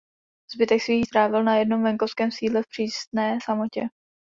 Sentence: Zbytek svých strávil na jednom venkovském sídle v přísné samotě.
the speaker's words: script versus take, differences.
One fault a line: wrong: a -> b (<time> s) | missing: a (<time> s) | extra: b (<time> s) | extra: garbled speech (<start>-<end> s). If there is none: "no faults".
no faults